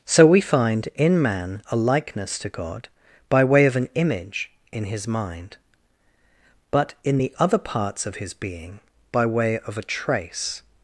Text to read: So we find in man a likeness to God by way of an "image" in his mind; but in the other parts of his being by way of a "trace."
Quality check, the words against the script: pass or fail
pass